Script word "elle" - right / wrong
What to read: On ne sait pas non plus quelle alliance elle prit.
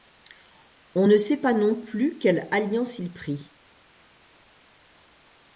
wrong